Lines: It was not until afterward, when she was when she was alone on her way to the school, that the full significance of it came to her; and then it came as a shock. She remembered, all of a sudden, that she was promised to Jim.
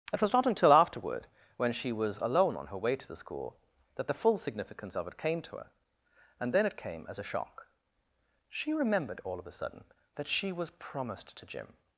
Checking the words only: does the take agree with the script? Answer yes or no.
no